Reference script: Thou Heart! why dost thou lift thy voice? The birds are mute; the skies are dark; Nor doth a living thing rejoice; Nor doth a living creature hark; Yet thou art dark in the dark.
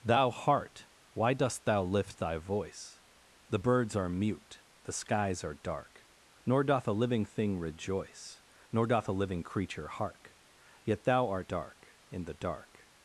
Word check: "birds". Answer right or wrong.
right